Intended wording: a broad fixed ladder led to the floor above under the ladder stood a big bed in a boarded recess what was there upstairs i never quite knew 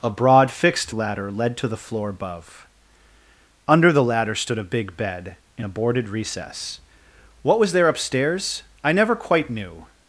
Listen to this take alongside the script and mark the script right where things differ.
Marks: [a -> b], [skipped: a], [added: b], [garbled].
a broad fixed ladder led to the floor above under the ladder stood a big bed in a boarded recess what was there upstairs i never quite knew